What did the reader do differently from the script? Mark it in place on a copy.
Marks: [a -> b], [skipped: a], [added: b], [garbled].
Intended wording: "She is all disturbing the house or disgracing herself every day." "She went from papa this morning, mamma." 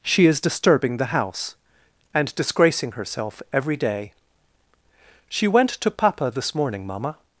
"She is [skipped: all] disturbing the house [or -> and] disgracing herself every day." "She went [from -> to] papa this morning, mamma."